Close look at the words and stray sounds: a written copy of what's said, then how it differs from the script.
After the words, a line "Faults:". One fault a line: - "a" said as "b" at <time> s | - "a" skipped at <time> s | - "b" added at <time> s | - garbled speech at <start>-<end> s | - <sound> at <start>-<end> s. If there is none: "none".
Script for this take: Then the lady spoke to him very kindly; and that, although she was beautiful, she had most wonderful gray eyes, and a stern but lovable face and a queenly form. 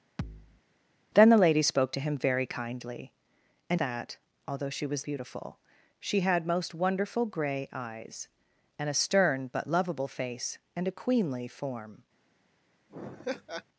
Then the lady spoke to him very kindly; and that, although she was beautiful, she had most wonderful gray eyes, and a stern but lovable face and a queenly form.
Faults:
- thud at 0.2-0.6 s
- laugh at 12.9-13.6 s